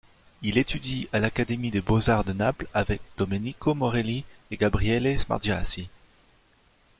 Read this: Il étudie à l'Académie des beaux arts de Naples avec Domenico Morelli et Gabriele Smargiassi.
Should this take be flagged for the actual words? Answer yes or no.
no